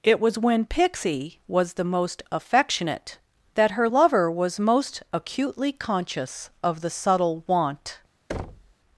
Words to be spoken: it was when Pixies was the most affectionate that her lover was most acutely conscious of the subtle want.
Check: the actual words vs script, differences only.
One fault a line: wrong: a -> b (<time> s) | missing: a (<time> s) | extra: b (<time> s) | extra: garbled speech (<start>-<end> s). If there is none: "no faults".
wrong: Pixies -> Pixie (0.7 s)